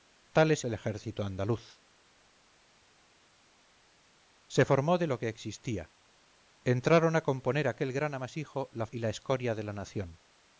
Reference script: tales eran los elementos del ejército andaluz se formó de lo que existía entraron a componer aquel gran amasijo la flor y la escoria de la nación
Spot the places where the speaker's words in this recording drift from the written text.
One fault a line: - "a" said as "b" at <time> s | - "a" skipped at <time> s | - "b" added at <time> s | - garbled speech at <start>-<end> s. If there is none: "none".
- "eran los elementos" skipped at 0.7 s
- "flor" skipped at 8.9 s